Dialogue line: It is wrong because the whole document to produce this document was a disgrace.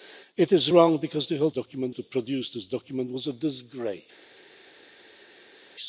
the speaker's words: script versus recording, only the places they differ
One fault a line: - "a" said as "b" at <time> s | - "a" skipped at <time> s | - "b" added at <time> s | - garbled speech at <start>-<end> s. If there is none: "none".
none